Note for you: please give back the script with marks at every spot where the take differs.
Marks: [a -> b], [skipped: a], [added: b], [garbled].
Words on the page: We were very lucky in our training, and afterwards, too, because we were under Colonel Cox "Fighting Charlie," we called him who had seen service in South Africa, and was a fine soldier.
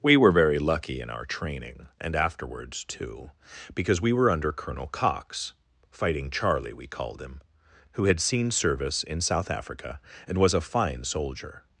We were very lucky in our training, and afterwards, too, because we were under Colonel Cox "Fighting Charlie," we called him who had seen service in South Africa, and was a fine soldier.